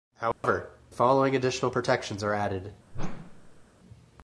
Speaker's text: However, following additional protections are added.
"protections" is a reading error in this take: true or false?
false